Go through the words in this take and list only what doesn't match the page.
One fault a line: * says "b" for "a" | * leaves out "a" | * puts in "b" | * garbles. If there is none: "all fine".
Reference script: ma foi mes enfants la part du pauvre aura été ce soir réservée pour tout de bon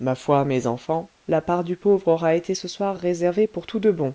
all fine